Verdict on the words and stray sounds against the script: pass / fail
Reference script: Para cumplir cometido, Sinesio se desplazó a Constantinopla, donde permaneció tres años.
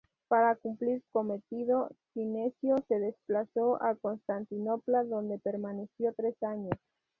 pass